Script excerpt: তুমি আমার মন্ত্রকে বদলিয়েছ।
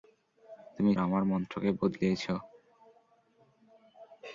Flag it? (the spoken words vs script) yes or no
no